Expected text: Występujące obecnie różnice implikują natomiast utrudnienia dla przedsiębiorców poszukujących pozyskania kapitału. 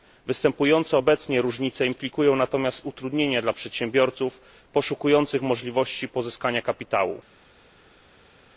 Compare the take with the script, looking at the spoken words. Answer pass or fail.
fail